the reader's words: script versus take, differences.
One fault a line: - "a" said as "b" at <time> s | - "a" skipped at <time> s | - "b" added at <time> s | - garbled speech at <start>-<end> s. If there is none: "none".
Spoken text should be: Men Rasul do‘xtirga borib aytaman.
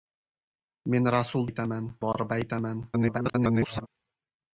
- "do‘xtirga" said as "aytaman" at 1.5 s
- garbled speech at 2.9-3.9 s